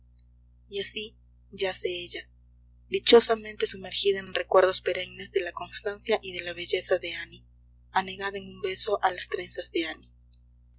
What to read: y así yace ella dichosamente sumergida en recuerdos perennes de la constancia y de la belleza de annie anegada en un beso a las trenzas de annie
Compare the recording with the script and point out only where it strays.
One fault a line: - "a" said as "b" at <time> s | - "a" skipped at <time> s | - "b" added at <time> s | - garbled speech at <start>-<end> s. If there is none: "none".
- "en" added at 4.2 s